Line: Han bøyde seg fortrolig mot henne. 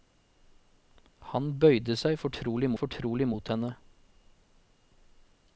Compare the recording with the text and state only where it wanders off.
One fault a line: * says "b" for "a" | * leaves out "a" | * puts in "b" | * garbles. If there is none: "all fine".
* puts in "fortrolig"